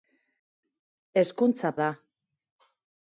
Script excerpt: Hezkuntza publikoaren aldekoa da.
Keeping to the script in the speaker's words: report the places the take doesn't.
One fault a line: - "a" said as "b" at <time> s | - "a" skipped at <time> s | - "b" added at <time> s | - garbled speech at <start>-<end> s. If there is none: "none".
- "publikoaren aldekoa" skipped at 1.7 s